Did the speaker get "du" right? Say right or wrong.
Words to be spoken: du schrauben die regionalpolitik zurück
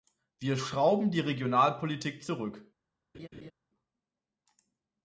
wrong